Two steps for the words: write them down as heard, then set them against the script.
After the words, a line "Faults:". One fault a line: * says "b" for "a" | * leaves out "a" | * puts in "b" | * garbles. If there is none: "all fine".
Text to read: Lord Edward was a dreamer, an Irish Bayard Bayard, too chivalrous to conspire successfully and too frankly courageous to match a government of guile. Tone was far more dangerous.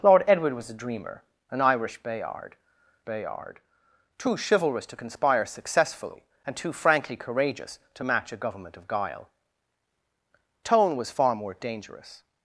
Lord Edward was a dreamer, an Irish Bayard Bayard, too chivalrous to conspire successfully and too frankly courageous to match a government of guile. Tone was far more dangerous.
Faults:
all fine